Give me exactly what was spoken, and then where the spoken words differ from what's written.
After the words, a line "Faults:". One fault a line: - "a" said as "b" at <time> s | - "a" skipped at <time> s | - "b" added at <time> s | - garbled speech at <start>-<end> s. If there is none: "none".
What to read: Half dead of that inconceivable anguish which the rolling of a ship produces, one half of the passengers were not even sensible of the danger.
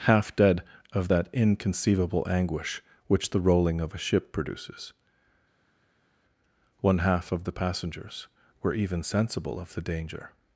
Half dead of that inconceivable anguish which the rolling of a ship produces, one half of the passengers were even sensible of the danger.
Faults:
- "not" skipped at 8.7 s